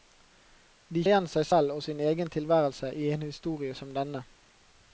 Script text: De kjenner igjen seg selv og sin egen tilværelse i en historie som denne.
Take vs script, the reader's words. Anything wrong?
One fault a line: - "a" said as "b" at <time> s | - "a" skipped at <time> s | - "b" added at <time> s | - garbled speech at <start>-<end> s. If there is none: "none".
- "kjenner" skipped at 1.0 s